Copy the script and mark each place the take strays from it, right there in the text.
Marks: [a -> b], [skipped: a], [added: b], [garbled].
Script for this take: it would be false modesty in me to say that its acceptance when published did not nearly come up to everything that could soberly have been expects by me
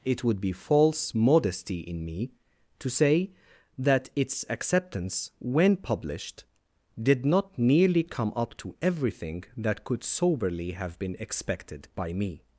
it would be false modesty in me to say that its acceptance when published did not nearly come up to everything that could soberly have been [expects -> expected] by me